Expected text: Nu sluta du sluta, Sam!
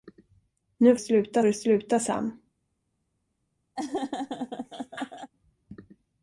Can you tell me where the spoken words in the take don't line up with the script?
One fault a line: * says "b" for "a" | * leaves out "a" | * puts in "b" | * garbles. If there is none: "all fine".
all fine